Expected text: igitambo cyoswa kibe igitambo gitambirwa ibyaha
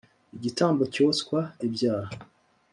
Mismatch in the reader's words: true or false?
true